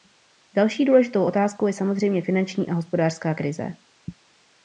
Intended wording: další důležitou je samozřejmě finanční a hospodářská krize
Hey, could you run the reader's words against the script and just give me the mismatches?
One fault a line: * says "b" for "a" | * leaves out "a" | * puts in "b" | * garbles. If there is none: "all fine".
* puts in "otázkou"